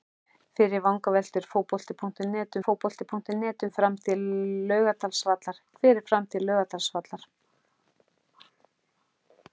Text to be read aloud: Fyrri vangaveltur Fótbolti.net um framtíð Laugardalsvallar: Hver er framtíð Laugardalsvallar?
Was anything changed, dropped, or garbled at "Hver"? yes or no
no